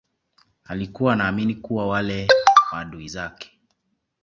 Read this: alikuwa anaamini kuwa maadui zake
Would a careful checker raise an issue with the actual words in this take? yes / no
yes